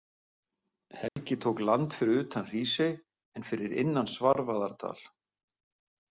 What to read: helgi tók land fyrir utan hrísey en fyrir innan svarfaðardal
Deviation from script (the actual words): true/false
false